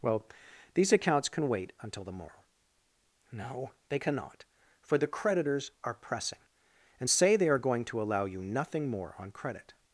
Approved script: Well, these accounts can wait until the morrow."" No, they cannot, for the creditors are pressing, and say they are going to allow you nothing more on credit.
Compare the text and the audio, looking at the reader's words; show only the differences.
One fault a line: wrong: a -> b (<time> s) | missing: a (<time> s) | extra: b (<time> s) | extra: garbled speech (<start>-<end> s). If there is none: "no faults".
no faults